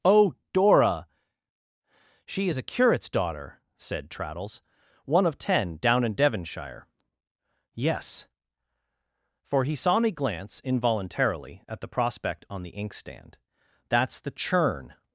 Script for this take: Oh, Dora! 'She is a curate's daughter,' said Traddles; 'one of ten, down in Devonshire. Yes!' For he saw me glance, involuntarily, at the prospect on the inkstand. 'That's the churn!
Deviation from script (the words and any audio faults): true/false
false